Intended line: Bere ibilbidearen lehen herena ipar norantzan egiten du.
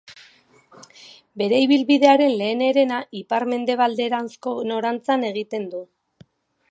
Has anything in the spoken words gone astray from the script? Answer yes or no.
yes